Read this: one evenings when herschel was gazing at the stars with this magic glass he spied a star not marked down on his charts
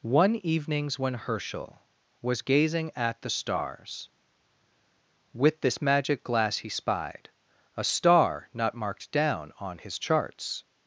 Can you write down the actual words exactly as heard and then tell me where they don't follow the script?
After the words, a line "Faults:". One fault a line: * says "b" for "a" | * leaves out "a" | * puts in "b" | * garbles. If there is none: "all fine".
one evenings when herschel was gazing at the stars with this magic glass he spied a star not marked down on his charts
Faults:
all fine